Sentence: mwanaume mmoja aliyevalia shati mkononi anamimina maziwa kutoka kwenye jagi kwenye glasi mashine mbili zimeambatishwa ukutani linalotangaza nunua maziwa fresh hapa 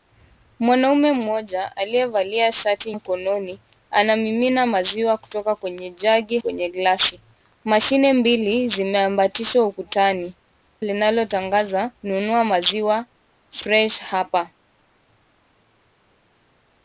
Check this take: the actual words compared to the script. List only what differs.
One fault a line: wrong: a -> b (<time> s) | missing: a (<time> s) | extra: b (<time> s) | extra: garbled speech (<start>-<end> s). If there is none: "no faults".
no faults